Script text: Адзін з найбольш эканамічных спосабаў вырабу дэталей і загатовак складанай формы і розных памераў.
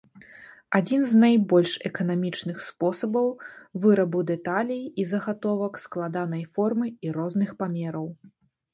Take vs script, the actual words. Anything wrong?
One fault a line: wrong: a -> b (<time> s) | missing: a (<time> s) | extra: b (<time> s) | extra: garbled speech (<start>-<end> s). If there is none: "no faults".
no faults